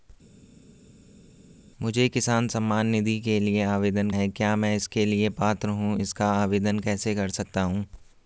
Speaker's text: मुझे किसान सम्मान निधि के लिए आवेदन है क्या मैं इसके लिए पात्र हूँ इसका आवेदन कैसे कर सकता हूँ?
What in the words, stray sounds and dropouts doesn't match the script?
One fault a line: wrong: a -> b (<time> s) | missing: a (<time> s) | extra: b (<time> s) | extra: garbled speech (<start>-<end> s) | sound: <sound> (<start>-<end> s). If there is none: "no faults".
no faults